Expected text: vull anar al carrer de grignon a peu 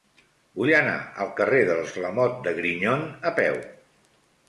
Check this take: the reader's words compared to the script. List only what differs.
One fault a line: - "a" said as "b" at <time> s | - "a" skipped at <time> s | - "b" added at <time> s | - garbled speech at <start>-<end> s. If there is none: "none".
- "dels lamote" added at 1.7 s